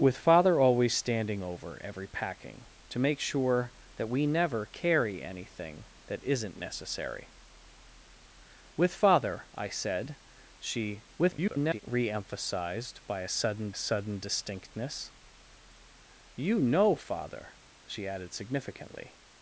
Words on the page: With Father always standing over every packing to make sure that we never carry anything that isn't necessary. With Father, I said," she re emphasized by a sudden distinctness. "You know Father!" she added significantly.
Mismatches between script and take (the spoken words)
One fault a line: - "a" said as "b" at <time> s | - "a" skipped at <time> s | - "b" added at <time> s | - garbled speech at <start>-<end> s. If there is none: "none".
- garbled speech at 11.2-11.8 s
- "sudden" added at 13.7 s